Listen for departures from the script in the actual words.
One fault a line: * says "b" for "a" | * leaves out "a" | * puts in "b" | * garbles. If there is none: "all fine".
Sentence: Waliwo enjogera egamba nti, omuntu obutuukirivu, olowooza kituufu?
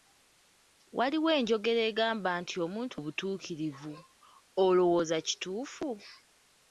all fine